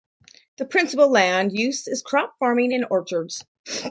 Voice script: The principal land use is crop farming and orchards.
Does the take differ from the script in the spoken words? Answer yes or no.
no